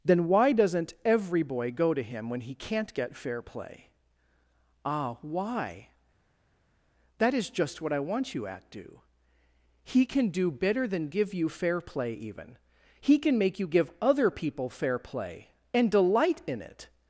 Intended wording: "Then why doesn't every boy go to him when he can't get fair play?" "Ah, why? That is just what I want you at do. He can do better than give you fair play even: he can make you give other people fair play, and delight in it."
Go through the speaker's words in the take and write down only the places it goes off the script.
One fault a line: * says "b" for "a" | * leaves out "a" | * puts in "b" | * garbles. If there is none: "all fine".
all fine